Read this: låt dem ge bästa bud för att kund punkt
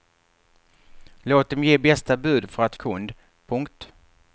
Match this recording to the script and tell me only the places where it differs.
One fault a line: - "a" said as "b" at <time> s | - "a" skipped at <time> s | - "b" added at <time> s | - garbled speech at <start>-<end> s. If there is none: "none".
none